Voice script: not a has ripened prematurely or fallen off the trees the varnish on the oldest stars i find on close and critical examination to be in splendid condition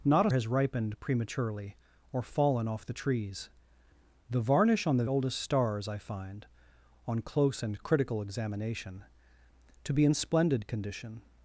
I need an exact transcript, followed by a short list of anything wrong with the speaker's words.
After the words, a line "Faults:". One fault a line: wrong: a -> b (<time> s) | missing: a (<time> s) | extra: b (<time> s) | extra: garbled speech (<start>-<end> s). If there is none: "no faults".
not a has ripened prematurely or fallen off the trees the varnish on the oldest stars i find on close and critical examination to be in splendid condition
Faults:
no faults